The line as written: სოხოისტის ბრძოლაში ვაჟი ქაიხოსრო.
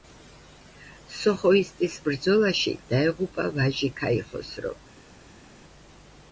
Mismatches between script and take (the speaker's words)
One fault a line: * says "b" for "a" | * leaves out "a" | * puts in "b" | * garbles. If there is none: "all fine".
* puts in "დაეღუპა"